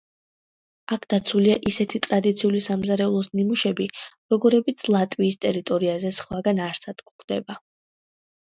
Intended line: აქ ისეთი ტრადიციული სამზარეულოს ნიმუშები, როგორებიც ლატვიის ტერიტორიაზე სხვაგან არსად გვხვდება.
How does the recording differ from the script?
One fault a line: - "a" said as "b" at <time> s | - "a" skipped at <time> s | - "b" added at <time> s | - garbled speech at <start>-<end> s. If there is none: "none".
- "დაცულია" added at 1.1 s